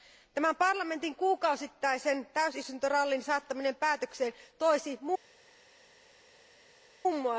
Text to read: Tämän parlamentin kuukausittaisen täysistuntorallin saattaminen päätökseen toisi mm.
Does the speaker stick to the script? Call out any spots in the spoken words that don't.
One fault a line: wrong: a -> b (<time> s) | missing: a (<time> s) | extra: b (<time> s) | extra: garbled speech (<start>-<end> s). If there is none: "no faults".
no faults